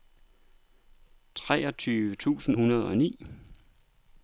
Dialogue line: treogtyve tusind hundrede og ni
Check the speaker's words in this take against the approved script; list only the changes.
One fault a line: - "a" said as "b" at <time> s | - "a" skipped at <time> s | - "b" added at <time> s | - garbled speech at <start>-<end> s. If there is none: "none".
none